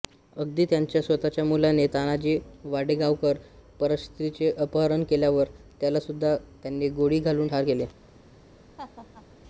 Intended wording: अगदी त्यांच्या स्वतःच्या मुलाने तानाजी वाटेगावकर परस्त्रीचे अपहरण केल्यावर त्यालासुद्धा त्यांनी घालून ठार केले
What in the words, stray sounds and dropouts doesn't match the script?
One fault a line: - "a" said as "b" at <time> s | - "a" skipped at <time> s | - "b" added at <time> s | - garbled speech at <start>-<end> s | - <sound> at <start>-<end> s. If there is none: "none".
- "गोळी" added at 6.9 s
- laugh at 8.8-9.3 s